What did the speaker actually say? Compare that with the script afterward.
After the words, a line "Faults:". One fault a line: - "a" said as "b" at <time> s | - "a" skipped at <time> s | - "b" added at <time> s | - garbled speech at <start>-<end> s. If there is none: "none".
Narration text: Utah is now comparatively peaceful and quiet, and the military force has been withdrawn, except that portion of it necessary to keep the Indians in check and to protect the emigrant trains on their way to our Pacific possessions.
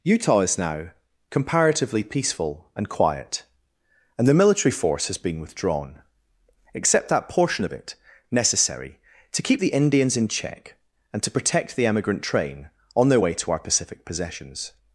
Utah is now comparatively peaceful and quiet, and the military force has been withdrawn, except that portion of it necessary to keep the Indians in check and to protect the emigrant train on their way to our Pacific possessions.
Faults:
- "trains" said as "train" at 12.2 s